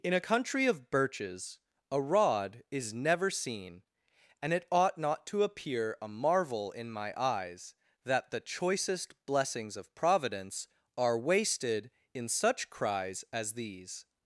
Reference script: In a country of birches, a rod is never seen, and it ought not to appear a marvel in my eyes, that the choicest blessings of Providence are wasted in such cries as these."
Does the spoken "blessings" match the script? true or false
true